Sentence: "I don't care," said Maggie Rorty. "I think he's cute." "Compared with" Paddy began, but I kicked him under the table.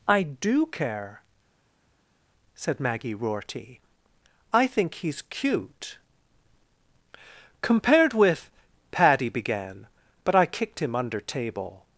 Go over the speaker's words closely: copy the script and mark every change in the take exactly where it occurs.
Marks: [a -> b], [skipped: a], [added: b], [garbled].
"I [don't -> do] care," said Maggie Rorty. "I think he's cute." "Compared with" Paddy began, but I kicked him under [skipped: the] table.